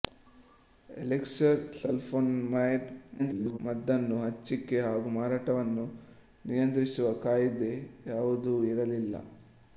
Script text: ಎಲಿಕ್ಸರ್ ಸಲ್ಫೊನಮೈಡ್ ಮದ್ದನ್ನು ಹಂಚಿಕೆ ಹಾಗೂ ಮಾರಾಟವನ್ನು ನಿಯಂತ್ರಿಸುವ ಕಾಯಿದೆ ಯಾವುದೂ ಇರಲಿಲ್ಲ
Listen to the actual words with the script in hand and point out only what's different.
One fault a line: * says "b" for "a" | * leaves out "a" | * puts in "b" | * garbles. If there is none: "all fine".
* garbles